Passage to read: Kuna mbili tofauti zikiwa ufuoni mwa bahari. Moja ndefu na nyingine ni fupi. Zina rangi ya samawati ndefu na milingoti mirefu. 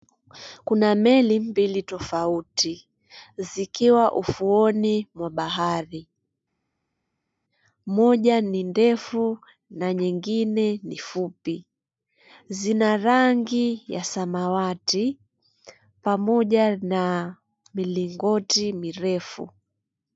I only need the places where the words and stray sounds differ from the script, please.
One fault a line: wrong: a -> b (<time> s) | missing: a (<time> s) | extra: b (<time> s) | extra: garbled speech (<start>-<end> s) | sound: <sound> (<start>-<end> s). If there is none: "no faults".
extra: meli (0.9 s)
extra: ni (8.4 s)
wrong: ndefu -> pamoja (16.0 s)